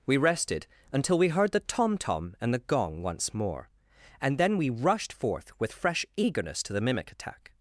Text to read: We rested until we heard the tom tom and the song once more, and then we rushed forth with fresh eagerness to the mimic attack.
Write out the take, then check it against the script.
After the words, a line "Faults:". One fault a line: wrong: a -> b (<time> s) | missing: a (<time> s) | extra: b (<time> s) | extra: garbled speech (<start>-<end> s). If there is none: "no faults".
We rested until we heard the tom tom and the gong once more, and then we rushed forth with fresh eagerness to the mimic attack.
Faults:
wrong: song -> gong (2.6 s)